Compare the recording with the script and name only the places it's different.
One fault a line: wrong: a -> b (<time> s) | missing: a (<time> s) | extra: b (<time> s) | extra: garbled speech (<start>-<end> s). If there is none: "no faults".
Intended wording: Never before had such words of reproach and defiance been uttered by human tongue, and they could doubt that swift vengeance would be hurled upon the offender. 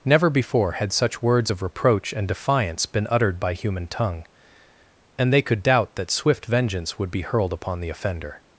no faults